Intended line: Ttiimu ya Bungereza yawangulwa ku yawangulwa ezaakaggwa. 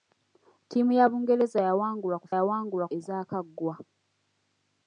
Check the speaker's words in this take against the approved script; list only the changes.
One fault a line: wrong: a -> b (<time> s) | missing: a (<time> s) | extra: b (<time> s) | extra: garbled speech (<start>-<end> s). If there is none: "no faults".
no faults